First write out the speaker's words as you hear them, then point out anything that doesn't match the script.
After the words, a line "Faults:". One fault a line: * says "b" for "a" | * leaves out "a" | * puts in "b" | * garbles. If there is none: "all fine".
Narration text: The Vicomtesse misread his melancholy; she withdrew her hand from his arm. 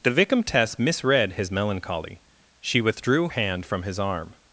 The Vicomtesse misread his melancholy; she withdrew hand from his arm.
Faults:
* leaves out "her"